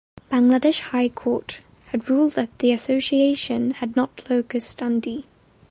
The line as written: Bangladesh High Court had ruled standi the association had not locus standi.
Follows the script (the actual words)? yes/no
no